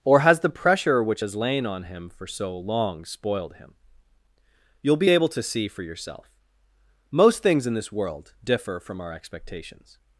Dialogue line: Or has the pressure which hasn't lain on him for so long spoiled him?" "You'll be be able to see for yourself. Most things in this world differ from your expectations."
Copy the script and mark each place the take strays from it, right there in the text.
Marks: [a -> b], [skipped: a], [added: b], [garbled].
Or has the pressure which [hasn't -> has] lain on him for so long spoiled him?" "You'll be [skipped: be] able to see for yourself. Most things in this world differ from [your -> our] expectations."